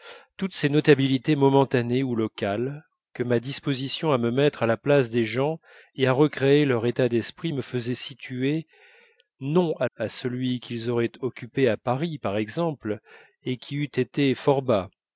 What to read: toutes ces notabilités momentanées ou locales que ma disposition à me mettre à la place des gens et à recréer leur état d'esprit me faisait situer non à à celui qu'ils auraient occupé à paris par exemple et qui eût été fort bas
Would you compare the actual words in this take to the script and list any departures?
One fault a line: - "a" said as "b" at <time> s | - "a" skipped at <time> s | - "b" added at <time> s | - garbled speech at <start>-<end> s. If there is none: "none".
none